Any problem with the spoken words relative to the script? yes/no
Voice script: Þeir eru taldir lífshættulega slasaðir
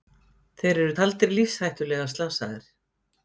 no